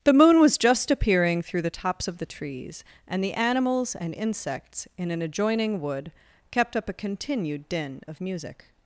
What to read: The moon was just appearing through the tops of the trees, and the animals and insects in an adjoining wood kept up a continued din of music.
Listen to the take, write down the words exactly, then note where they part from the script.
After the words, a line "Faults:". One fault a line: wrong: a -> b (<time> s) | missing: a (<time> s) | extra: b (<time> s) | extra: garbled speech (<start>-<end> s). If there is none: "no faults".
The moon was just appearing through the tops of the trees, and the animals and insects in an adjoining wood kept up a continued din of music.
Faults:
no faults